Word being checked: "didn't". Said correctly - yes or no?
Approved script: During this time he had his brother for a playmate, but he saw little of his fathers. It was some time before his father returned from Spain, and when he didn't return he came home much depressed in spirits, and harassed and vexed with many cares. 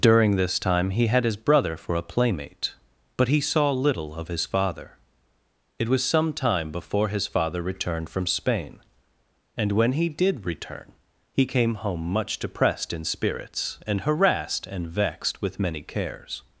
no